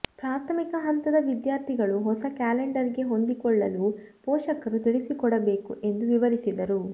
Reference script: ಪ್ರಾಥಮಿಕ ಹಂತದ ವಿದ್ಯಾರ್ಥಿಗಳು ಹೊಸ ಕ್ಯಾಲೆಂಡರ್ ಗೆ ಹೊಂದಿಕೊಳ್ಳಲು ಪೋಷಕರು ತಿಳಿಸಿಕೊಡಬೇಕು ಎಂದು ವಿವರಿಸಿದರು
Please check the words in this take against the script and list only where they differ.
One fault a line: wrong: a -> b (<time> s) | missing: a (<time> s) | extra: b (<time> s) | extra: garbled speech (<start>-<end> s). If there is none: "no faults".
no faults